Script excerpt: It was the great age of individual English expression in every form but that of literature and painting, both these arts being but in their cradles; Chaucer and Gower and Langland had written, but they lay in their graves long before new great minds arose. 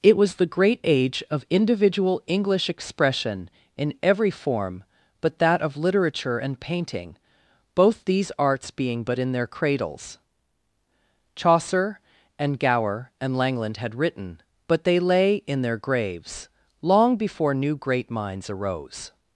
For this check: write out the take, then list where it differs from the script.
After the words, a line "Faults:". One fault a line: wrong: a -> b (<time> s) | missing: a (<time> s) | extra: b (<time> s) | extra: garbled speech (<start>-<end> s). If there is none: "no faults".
It was the great age of individual English expression in every form but that of literature and painting, both these arts being but in their cradles; Chaucer and Gower and Langland had written, but they lay in their graves long before new great minds arose.
Faults:
no faults